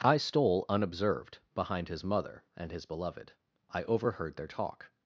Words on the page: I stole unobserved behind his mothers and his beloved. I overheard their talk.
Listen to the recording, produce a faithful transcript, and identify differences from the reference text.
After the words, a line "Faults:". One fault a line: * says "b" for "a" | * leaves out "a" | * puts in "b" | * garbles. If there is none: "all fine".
I stole unobserved behind his mother and his beloved. I overheard their talk.
Faults:
* says "mother" for "mothers"